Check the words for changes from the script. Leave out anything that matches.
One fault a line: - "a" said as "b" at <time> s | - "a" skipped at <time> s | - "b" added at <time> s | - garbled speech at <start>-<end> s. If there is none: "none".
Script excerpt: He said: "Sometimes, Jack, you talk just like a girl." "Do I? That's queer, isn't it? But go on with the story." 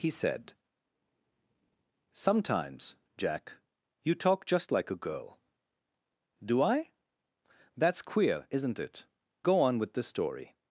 - "But" skipped at 9.0 s